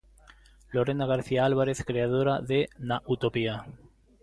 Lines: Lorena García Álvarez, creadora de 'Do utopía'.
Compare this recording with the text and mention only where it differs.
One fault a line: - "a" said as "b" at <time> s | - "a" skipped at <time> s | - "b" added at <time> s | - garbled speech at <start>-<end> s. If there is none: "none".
- "Do" said as "Na" at 2.8 s